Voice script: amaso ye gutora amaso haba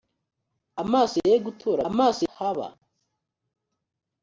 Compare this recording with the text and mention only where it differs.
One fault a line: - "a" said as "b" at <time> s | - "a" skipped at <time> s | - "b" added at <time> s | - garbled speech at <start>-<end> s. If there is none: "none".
none